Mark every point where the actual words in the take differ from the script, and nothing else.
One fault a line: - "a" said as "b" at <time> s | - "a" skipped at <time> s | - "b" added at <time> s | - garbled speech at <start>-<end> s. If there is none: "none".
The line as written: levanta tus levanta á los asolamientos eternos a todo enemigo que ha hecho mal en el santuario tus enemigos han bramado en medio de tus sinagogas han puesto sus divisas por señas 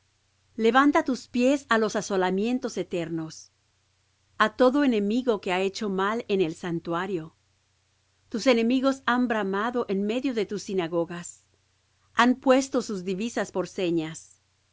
- "levanta" said as "pies" at 1.3 s